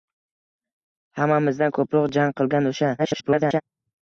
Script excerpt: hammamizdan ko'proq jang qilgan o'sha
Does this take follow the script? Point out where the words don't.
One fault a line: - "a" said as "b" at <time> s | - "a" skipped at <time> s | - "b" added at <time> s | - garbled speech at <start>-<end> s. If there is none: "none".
- garbled speech at 3.0-3.6 s